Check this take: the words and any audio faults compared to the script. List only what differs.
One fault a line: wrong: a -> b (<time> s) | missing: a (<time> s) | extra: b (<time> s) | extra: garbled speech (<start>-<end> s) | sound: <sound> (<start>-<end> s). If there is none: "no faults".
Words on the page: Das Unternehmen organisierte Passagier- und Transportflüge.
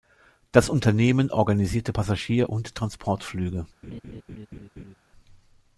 sound: laugh (3.8-5.0 s)